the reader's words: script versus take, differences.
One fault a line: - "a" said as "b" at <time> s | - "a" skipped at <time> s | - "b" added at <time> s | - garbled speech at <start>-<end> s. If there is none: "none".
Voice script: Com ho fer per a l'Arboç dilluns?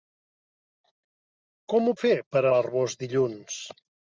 none